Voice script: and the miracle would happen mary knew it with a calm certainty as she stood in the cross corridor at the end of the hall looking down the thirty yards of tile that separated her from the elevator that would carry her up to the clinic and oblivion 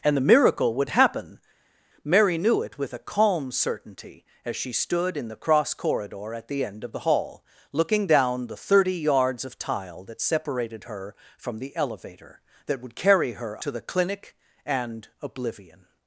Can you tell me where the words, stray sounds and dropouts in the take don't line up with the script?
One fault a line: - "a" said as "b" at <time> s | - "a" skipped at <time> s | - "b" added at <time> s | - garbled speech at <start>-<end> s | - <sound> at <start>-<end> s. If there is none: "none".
- "up" skipped at 13.6 s